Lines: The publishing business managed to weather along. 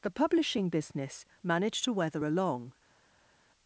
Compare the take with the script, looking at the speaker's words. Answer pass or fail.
pass